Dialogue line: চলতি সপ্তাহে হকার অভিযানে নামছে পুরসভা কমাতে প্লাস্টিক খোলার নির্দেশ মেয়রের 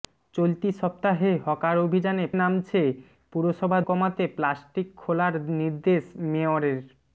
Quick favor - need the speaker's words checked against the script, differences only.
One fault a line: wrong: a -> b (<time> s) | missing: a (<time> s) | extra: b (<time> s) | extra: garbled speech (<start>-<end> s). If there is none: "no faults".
no faults